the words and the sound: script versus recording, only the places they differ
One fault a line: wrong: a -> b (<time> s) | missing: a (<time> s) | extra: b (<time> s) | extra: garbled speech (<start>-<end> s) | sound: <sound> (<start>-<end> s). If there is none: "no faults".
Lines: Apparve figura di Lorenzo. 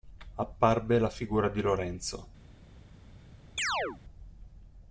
extra: la (1.0 s)
sound: chirp (3.6-4.0 s)